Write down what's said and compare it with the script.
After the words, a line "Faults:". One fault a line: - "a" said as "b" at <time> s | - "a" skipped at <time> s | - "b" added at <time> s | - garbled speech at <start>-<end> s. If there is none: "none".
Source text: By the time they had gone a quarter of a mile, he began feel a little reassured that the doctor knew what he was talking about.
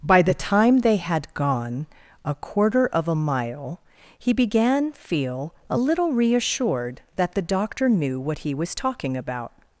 By the time they had gone a quarter of a mile, he began feel a little reassured that the doctor knew what he was talking about.
Faults:
none